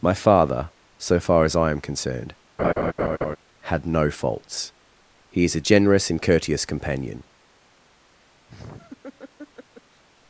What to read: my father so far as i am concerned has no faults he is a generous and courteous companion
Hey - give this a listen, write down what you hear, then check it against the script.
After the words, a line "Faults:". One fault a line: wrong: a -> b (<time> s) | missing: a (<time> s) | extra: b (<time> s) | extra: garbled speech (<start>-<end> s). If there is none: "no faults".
my father so far as i am concerned had no faults he is a generous and courteous companion
Faults:
wrong: has -> had (3.6 s)